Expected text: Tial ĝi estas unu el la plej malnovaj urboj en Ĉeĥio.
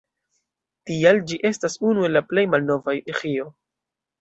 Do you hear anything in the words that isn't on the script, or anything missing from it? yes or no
yes